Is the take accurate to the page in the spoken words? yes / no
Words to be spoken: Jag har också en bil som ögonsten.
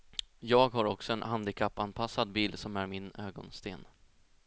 no